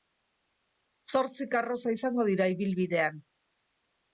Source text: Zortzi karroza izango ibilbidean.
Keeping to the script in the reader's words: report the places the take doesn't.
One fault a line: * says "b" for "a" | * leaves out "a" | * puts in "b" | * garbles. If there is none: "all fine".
* puts in "dira"